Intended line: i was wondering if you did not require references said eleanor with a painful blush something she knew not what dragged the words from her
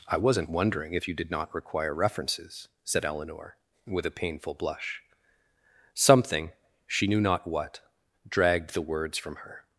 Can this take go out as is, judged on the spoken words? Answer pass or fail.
fail